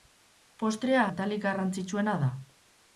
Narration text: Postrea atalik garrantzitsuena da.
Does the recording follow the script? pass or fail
pass